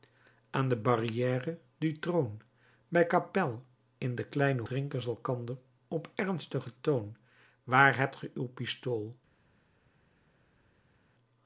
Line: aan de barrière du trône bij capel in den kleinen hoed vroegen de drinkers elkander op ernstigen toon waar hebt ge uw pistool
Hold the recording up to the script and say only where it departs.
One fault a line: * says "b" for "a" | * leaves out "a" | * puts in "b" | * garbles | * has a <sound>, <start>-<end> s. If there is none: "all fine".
* leaves out "hoed vroegen de"